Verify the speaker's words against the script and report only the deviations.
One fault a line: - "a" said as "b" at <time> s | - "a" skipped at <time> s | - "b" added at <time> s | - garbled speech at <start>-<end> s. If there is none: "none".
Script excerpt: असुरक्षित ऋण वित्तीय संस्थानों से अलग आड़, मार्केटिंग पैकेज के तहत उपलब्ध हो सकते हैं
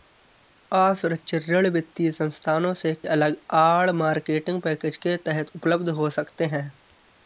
none